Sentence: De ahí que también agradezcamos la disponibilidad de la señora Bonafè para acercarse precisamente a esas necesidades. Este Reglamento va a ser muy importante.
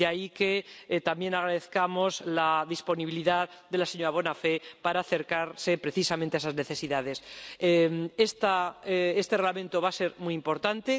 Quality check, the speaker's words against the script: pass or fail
pass